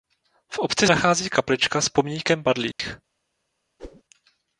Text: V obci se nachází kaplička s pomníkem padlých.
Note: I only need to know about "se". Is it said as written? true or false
false